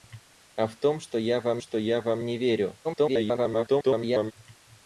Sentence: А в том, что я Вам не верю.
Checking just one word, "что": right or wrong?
right